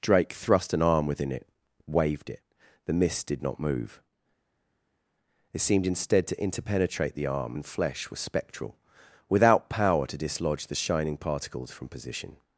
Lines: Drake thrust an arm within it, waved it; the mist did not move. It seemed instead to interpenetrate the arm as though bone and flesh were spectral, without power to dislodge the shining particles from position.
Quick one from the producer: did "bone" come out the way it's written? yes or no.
no